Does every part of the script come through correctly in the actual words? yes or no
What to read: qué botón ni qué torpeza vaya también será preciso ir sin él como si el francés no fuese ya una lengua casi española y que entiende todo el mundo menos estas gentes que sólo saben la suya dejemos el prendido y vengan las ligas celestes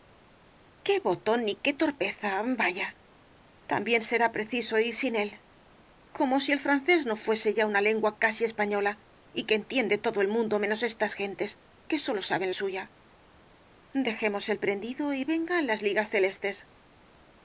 no